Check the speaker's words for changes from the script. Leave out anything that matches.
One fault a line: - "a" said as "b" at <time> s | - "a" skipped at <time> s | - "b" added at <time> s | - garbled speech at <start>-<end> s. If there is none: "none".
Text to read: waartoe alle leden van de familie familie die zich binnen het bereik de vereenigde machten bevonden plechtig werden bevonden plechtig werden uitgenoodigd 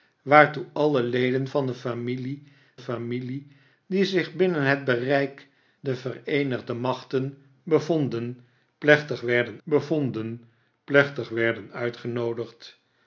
none